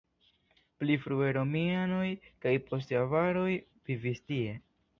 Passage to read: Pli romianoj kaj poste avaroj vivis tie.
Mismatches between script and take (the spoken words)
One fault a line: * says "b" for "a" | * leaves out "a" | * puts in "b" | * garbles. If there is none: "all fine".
* puts in "frue"